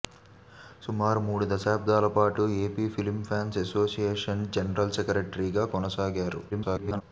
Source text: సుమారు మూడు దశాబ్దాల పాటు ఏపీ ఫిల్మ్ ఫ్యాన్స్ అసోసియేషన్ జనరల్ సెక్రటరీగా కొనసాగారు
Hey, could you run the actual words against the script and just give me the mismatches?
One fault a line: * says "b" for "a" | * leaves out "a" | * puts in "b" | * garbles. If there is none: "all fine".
* garbles